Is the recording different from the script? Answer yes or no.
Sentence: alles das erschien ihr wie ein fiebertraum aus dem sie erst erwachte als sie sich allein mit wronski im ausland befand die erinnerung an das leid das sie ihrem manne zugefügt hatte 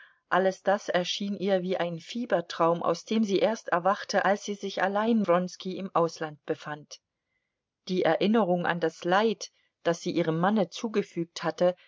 yes